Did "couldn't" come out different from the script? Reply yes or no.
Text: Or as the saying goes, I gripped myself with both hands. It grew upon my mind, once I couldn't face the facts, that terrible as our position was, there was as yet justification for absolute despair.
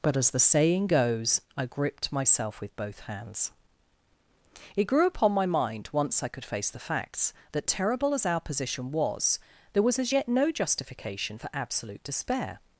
yes